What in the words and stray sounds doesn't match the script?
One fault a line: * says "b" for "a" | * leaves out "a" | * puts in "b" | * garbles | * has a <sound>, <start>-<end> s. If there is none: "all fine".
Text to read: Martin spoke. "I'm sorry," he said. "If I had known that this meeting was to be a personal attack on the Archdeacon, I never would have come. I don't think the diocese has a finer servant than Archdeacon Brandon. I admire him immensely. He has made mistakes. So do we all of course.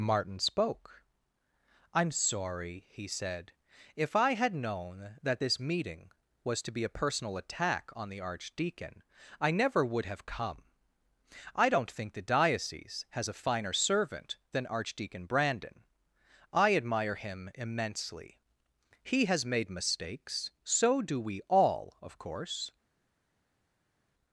all fine